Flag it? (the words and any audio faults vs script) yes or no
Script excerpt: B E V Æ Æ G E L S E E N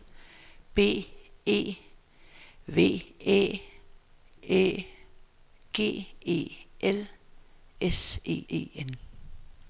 no